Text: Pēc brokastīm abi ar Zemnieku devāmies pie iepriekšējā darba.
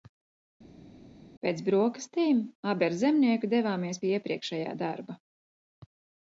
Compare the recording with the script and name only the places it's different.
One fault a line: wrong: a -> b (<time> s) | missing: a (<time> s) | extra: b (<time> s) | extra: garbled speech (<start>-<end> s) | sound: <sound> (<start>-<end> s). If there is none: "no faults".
no faults